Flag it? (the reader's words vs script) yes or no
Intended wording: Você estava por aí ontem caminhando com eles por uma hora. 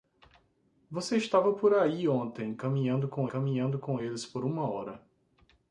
yes